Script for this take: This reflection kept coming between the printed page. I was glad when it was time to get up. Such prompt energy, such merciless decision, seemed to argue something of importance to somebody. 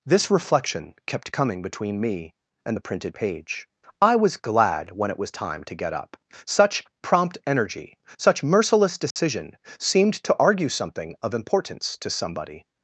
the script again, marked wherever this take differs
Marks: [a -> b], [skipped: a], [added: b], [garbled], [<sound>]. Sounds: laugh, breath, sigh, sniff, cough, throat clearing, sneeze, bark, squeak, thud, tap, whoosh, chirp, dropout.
This reflection kept coming between [added: me and] the printed page. I was glad when it was time to get up. Such prompt energy, such merciless decision, [dropout] seemed to argue something of importance to somebody.